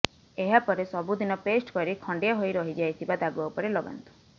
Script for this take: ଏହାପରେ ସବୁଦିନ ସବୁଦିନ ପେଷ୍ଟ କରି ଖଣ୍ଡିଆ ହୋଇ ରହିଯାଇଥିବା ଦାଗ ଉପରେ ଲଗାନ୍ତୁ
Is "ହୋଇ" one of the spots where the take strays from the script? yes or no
no